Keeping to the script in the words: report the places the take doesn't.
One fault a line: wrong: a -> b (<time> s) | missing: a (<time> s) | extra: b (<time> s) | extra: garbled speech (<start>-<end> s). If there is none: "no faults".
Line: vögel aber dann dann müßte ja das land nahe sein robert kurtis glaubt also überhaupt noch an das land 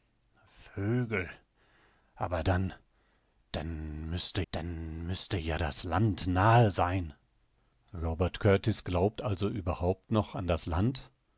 extra: dann müßte (4.5 s)